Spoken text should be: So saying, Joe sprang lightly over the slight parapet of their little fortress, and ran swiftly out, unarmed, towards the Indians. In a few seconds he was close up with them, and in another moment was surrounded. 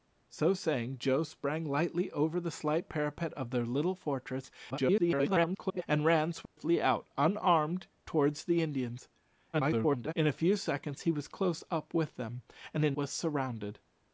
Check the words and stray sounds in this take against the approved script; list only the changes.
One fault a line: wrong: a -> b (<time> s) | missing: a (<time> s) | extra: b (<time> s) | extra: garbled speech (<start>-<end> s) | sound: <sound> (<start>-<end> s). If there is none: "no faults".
extra: garbled speech (4.7-5.8 s)
sound: dropout (6.5-6.6 s)
extra: garbled speech (9.5-10.1 s)
missing: another moment (13.0 s)